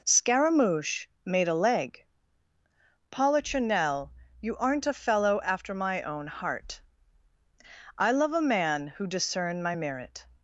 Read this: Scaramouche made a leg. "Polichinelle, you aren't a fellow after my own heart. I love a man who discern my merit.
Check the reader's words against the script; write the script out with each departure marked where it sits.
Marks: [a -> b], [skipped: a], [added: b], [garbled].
Scaramouche made a leg. "Polichinelle, you aren't a fellow after my own heart. I love a man who discern my merit.